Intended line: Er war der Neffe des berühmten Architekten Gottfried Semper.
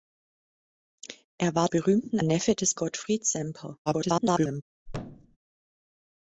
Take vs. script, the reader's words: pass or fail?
fail